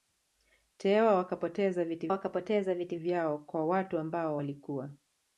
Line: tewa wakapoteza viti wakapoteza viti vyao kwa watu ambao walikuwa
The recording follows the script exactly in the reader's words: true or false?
true